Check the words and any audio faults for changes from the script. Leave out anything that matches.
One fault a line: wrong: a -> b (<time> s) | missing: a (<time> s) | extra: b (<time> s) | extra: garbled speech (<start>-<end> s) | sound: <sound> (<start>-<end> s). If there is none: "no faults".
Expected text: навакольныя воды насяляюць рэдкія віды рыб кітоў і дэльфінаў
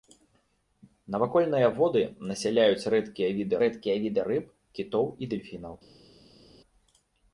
extra: рэдкія віды (3.7 s)